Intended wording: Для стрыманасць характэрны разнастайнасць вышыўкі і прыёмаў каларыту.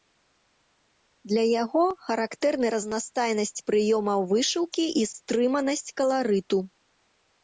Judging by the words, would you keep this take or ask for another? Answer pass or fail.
fail